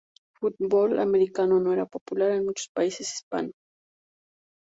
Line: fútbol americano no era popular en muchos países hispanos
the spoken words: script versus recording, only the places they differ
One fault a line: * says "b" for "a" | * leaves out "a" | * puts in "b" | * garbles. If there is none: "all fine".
all fine